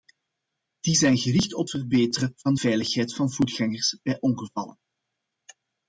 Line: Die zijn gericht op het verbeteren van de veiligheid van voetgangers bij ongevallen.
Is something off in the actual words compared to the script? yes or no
yes